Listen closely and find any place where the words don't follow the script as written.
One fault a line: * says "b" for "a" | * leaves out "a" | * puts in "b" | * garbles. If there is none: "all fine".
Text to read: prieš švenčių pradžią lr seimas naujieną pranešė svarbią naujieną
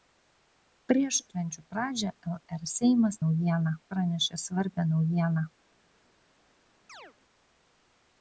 all fine